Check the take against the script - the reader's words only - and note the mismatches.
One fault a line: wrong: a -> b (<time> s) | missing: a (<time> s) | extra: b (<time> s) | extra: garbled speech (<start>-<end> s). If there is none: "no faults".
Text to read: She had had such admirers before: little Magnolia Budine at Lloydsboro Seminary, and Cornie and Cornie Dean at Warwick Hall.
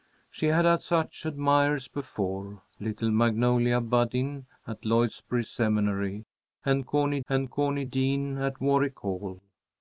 no faults